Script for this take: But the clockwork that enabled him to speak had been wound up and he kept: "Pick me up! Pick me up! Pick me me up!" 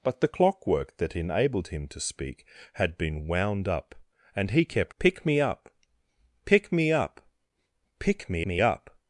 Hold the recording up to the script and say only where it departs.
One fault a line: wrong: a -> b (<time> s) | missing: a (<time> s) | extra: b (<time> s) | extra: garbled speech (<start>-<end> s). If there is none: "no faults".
no faults